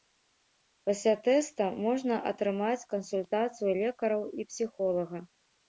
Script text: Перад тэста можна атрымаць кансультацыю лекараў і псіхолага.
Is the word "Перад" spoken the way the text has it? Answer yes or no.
no